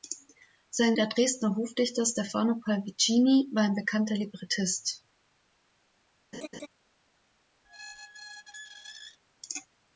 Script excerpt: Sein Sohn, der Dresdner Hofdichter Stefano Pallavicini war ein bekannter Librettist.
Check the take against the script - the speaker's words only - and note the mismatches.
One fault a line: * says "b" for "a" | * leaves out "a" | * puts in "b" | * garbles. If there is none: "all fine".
* leaves out "Sohn"